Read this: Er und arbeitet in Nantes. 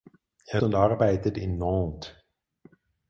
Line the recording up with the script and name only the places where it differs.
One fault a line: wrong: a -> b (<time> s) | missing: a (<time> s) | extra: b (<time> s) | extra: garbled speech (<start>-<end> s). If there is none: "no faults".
no faults